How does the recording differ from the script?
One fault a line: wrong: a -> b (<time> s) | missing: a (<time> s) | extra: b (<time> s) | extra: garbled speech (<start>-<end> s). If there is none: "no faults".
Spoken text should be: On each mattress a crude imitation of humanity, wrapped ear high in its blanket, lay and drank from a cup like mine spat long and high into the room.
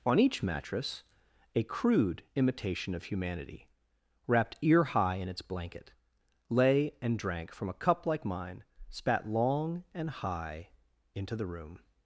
no faults